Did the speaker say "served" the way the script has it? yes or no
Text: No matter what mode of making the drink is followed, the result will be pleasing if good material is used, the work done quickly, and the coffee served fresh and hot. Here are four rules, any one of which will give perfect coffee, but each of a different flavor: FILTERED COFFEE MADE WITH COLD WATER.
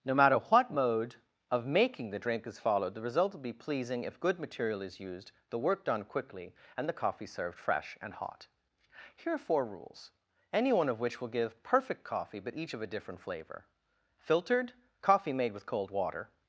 yes